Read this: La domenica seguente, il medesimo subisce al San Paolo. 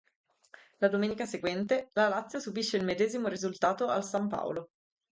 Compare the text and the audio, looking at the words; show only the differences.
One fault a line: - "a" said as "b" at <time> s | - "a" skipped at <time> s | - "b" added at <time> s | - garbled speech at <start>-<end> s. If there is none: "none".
- "la Lazio subisce" added at 1.9 s
- "subisce" said as "risultato" at 3.3 s